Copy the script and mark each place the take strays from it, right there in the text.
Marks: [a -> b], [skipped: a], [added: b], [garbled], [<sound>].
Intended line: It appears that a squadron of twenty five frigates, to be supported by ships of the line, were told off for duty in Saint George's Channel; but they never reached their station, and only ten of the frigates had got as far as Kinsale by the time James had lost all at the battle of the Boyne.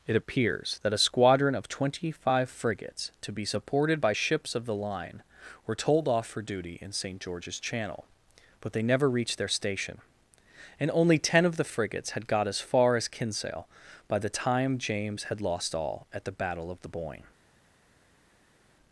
It appears that a squadron of twenty five frigates, to be supported by ships of the line, were told off for duty in Saint George's Channel; but they never reached their station, and only ten of the frigates had got as far as Kinsale by the time James had lost all at the battle of the Boyne.